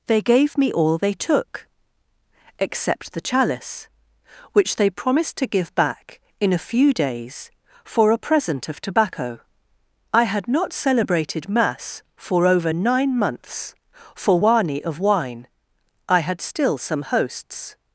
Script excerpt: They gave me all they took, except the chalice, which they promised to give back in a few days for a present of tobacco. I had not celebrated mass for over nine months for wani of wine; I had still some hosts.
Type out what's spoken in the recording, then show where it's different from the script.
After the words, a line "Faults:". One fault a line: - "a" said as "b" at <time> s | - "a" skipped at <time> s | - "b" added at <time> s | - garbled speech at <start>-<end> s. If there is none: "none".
They gave me all they took, except the chalice, which they promised to give back in a few days for a present of tobacco. I had not celebrated mass for over nine months for wani of wine; I had still some hosts.
Faults:
none